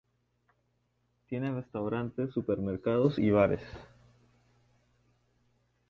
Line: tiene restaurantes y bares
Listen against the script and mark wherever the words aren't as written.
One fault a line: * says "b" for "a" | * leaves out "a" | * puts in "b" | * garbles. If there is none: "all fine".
* puts in "supermercados"